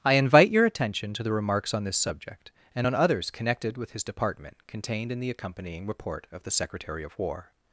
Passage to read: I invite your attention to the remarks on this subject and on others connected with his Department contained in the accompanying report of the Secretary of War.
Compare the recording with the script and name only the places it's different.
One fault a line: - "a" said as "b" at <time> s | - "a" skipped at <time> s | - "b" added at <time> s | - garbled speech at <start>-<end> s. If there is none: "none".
none